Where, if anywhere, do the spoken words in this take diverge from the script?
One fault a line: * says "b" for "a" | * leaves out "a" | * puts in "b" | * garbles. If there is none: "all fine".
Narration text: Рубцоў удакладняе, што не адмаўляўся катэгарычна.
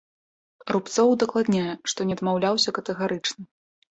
all fine